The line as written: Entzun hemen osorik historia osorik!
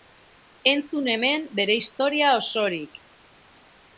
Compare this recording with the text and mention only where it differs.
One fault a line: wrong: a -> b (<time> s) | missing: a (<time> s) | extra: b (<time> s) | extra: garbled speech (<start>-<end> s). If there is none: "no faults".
wrong: osorik -> bere (1.6 s)